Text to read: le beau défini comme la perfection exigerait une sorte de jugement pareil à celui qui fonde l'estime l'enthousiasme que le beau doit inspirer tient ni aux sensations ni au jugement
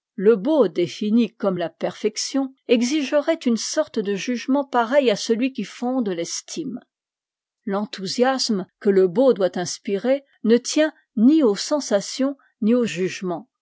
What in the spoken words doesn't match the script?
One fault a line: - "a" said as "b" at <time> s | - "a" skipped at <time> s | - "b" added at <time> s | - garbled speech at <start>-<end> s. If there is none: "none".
- "ne" added at 10.4 s